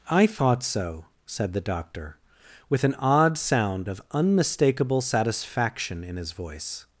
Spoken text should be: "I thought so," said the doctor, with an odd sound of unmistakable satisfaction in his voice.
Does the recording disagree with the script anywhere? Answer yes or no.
no